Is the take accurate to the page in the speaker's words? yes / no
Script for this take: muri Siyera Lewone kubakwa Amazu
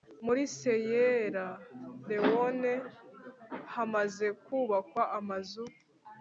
no